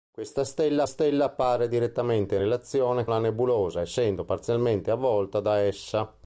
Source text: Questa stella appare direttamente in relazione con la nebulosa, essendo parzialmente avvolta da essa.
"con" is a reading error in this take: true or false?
true